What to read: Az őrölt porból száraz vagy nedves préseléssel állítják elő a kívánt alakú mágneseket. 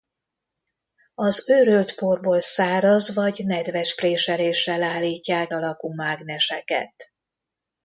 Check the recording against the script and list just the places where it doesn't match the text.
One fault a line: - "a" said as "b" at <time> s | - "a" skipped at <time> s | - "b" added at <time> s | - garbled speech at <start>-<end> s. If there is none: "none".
- "elő a kívánt" skipped at 5.5 s